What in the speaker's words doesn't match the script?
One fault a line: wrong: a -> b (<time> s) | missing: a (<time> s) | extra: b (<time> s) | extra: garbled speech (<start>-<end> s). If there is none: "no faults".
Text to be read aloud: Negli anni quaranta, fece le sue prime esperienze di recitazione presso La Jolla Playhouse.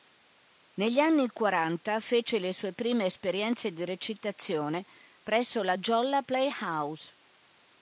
no faults